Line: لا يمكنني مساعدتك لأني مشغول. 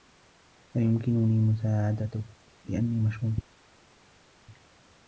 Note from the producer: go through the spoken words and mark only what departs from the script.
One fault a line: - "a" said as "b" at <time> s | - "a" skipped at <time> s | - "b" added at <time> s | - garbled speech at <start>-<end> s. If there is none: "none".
none